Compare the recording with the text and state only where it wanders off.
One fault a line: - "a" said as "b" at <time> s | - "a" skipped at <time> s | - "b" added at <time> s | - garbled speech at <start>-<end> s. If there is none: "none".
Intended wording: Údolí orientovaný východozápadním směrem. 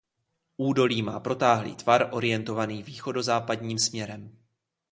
- "má protáhlý tvar" added at 1.0 s